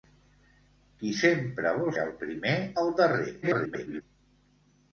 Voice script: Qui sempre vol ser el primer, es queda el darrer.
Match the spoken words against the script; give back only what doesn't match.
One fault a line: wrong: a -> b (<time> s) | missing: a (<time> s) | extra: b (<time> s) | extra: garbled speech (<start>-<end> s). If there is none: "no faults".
missing: ser (1.9 s)
missing: es queda (2.5 s)
extra: garbled speech (3.4-4.0 s)